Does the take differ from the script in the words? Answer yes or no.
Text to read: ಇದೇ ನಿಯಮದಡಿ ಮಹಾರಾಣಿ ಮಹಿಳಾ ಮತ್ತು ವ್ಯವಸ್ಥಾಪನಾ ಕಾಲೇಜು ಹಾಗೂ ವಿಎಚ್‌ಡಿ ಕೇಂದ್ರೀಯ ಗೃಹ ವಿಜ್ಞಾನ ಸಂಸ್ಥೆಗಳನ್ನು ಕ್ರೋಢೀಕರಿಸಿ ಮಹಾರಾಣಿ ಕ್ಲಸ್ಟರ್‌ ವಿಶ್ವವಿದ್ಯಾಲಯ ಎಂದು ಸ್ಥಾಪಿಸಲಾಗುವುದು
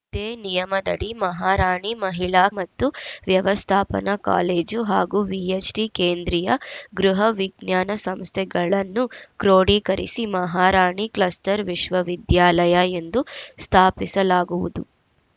no